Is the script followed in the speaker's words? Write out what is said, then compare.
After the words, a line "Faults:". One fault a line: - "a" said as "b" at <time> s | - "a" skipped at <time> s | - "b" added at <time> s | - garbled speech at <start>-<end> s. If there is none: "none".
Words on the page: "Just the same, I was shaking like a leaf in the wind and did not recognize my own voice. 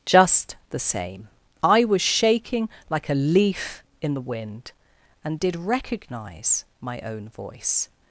"Just the same, I was shaking like a leaf in the wind and did recognize my own voice.
Faults:
- "not" skipped at 5.5 s